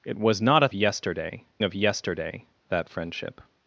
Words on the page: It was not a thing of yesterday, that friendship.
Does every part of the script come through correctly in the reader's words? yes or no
no